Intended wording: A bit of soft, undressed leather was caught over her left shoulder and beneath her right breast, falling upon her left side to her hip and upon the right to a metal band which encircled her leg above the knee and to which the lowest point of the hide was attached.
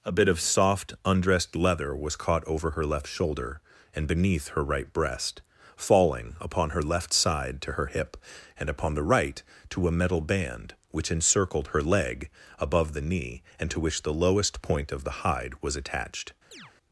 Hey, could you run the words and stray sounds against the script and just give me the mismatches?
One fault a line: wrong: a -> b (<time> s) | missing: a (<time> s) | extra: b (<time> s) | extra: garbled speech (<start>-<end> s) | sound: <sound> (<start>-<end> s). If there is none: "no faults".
sound: chirp (16.5-16.7 s)